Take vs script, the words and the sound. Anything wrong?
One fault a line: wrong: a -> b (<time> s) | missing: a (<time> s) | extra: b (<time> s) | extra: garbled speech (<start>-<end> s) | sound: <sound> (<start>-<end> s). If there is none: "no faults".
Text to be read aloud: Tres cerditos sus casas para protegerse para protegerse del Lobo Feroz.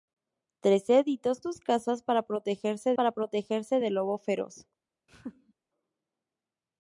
sound: laugh (5.1-5.5 s)